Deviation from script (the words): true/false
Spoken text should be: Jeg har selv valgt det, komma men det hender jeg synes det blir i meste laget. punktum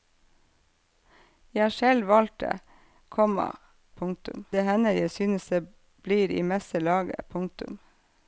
true